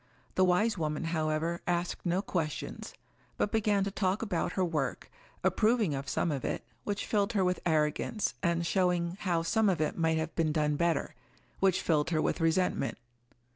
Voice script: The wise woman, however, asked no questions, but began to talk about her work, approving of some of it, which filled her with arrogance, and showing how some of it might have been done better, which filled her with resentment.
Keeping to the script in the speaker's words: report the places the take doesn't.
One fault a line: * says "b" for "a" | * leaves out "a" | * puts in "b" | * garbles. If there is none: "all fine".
all fine